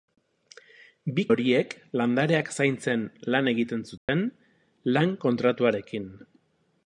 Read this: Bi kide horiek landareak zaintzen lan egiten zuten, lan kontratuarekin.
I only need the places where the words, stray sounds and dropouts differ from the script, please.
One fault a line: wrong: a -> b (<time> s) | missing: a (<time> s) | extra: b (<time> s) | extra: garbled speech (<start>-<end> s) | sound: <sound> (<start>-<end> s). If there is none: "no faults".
missing: kide (1.2 s)
sound: dropout (4.0-4.1 s)